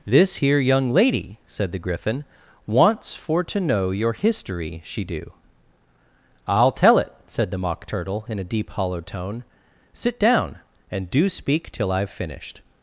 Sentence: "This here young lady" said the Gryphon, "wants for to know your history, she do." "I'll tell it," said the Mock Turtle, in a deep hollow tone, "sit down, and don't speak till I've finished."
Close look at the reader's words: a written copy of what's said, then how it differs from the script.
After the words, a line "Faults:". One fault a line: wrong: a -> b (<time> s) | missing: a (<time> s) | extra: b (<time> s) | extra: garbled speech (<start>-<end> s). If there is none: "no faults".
"This here young lady" said the Gryphon, "wants for to know your history, she do." "I'll tell it," said the Mock Turtle, in a deep hollow tone, "sit down, and do speak till I've finished."
Faults:
wrong: don't -> do (11.1 s)